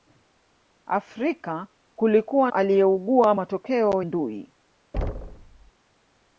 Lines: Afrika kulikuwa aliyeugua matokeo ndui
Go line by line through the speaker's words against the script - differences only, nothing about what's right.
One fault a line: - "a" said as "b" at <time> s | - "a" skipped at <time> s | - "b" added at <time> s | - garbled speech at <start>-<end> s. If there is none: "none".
none